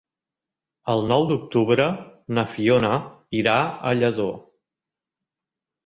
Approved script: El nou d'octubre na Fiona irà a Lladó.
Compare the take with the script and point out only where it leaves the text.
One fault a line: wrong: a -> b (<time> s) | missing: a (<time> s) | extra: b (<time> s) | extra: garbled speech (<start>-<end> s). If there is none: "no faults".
no faults